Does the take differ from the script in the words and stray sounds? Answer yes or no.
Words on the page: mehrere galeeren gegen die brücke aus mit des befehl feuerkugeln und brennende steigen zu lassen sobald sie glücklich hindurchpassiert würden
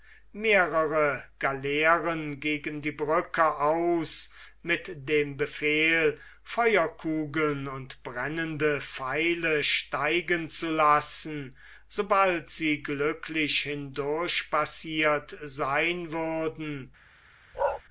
yes